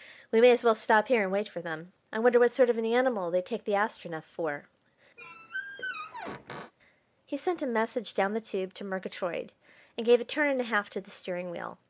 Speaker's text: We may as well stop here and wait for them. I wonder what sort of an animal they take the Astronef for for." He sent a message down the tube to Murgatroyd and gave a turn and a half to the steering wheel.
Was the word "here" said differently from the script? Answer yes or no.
no